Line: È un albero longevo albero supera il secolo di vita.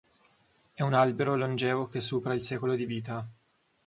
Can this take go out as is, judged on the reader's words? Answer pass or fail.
fail